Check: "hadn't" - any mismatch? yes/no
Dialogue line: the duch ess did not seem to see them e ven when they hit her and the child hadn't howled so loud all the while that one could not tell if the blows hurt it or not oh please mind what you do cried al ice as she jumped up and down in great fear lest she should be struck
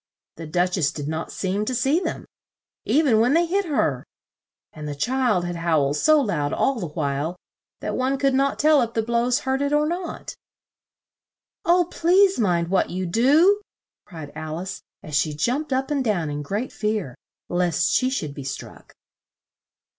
yes